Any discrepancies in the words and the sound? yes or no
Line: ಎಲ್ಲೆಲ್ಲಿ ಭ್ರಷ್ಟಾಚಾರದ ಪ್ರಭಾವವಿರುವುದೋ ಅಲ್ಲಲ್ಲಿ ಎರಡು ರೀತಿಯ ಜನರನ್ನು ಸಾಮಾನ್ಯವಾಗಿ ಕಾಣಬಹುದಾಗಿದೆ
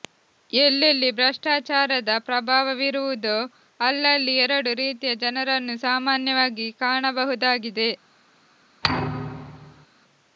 yes